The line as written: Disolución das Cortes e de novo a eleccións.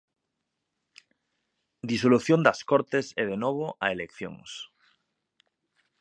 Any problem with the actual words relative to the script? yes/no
no